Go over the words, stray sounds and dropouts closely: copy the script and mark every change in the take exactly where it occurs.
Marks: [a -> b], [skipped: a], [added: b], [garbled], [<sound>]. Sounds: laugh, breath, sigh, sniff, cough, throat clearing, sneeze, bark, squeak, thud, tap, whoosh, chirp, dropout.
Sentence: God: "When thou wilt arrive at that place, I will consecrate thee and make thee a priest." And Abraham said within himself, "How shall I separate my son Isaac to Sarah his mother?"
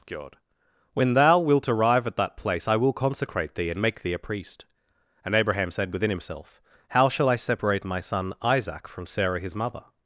God: "When thou wilt arrive at that place, I will consecrate thee and make thee a priest." And Abraham said within himself, "How shall I separate my son Isaac [to -> from] Sarah his mother?"